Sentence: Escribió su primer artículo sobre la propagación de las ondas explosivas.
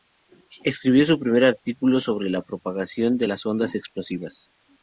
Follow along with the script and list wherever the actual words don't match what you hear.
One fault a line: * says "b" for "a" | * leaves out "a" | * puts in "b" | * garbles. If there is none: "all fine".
all fine